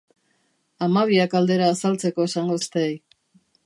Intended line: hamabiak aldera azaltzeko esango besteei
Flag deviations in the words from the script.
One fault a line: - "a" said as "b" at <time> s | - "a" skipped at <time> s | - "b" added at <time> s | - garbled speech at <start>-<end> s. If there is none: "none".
none